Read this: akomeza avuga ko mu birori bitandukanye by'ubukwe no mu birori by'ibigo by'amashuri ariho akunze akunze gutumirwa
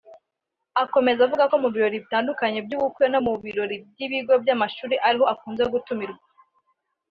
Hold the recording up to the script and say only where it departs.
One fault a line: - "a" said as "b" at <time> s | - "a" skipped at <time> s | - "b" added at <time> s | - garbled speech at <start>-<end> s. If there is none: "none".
- "akunze" skipped at 5.6 s